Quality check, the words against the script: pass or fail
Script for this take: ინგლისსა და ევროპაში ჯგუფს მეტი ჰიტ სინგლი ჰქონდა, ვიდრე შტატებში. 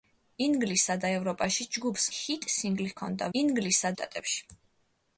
fail